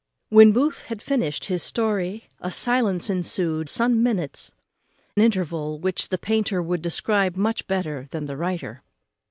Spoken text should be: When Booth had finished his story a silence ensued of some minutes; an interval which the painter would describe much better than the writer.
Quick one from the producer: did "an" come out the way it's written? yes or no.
no